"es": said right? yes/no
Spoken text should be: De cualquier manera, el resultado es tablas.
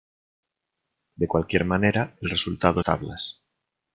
no